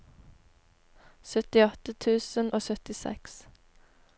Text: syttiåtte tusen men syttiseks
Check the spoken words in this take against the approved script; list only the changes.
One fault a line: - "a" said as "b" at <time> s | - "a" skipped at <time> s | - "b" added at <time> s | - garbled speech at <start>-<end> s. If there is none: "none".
- "men" said as "og" at 2.5 s